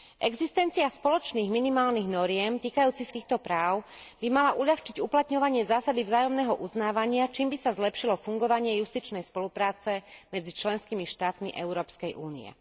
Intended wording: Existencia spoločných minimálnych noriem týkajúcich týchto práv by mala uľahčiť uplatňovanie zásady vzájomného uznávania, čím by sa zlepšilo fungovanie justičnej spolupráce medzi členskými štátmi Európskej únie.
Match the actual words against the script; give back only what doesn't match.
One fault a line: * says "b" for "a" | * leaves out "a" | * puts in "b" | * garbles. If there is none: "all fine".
all fine